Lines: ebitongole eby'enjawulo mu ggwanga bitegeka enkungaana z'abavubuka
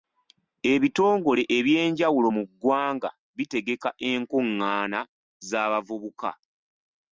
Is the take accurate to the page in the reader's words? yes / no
yes